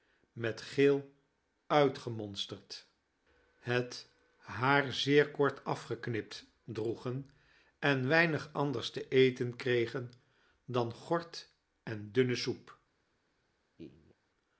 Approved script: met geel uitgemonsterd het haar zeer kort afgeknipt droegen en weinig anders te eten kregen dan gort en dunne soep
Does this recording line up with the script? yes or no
yes